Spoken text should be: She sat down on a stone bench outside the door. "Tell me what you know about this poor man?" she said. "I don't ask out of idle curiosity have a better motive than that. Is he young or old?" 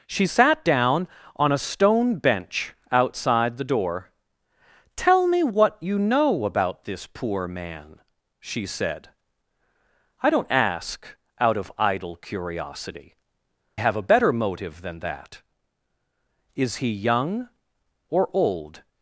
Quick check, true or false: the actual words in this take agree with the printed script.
true